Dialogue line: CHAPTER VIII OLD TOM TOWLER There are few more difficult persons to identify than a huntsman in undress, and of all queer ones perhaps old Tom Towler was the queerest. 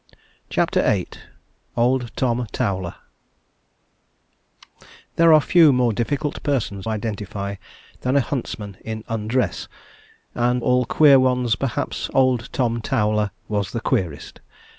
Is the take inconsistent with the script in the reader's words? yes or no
yes